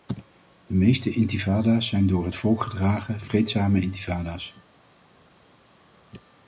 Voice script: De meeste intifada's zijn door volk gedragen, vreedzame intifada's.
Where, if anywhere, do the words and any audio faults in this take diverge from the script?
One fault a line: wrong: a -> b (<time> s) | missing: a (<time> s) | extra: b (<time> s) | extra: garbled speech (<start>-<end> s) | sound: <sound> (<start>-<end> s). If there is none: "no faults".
extra: het (2.2 s)